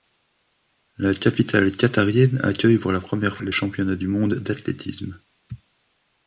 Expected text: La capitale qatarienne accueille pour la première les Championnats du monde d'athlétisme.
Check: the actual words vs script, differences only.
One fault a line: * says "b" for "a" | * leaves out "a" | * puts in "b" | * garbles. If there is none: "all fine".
all fine